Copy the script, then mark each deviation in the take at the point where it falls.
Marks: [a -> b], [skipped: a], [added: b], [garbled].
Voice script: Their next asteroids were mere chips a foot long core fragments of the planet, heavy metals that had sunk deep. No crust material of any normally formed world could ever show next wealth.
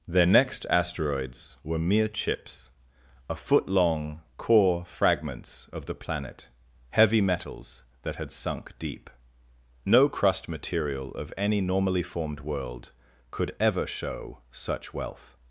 Their next asteroids were mere chips a foot long core fragments of the planet, heavy metals that had sunk deep. No crust material of any normally formed world could ever show [next -> such] wealth.